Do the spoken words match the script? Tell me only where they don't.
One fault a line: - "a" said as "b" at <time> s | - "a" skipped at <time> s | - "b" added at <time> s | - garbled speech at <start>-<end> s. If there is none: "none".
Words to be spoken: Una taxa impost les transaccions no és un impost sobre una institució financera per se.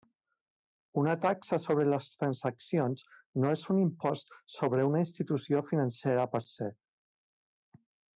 - "impost" said as "sobre" at 1.6 s